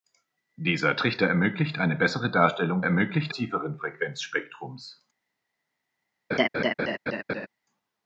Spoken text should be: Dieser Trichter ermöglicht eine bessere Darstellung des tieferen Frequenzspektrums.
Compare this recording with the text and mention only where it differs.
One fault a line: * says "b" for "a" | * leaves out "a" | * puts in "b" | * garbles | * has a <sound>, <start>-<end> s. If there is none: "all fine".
* says "ermöglicht" for "des"
* has a laugh, 6.3-7.5 s